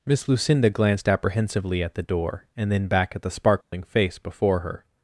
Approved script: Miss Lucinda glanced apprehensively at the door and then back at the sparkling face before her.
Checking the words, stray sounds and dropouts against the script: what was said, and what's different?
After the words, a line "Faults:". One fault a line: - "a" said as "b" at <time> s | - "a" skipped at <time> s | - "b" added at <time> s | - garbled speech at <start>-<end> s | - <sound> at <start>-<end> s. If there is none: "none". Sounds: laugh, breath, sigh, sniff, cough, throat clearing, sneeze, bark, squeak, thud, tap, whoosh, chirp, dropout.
Miss Lucinda glanced apprehensively at the door and then back at the sparkling face before her.
Faults:
- dropout at 3.6-3.7 s